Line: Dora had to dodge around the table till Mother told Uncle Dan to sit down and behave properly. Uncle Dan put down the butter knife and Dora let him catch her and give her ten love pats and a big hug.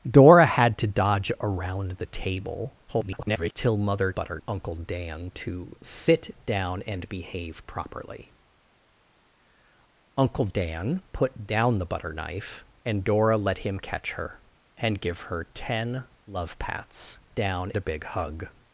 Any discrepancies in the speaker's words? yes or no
yes